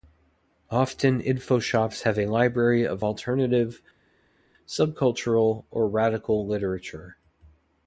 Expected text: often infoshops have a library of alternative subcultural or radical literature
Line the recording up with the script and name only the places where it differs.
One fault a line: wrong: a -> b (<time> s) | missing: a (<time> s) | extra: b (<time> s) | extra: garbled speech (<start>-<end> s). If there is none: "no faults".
no faults